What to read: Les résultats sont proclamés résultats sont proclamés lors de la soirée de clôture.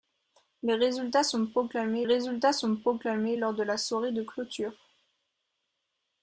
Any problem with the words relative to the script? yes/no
no